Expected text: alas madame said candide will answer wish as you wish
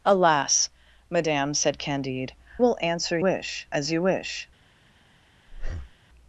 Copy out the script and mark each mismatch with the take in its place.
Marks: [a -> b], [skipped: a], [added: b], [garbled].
alas madame said candide will answer wish as you wish